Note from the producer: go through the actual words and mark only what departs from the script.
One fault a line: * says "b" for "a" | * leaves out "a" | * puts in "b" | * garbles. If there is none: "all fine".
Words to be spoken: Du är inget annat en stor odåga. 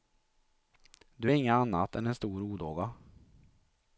* puts in "än"